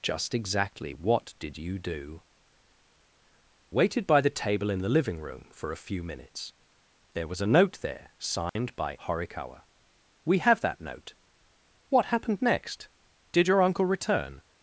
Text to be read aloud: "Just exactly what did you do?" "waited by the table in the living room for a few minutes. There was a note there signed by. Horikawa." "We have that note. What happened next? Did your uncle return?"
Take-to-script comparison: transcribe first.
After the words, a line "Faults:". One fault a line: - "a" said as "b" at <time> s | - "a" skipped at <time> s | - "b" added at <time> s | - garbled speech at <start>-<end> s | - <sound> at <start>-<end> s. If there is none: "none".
"Just exactly what did you do?" "waited by the table in the living room for a few minutes. There was a note there signed by. Horikawa." "We have that note. What happened next? Did your uncle return?"
Faults:
- dropout at 8.5-8.6 s